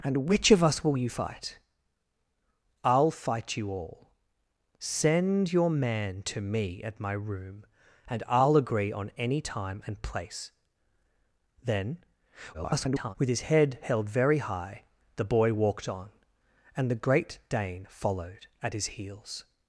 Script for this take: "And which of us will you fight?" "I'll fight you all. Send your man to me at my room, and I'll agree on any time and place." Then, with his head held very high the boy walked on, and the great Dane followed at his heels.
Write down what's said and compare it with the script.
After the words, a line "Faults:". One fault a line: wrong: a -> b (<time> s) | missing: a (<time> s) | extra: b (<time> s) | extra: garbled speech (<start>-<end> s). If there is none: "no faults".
"And which of us will you fight?" "I'll fight you all. Send your man to me at my room, and I'll agree on any time and place." Then, [garbled] with his head held very high the boy walked on, and the great Dane followed at his heels.
Faults:
extra: garbled speech (12.5-13.2 s)